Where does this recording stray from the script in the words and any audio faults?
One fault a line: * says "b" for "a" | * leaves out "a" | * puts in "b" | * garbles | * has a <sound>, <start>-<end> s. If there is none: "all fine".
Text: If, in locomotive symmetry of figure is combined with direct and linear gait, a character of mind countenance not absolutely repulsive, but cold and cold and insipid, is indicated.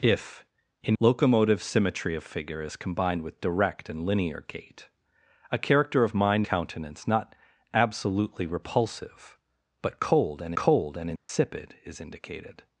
* has a dropout, 11.2-11.3 s